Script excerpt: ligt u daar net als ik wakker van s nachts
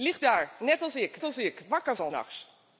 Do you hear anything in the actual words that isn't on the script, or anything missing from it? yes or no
yes